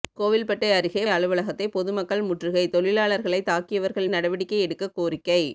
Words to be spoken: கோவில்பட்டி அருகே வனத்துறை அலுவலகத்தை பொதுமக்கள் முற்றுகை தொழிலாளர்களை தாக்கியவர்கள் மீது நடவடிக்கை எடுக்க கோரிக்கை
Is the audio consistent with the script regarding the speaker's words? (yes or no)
no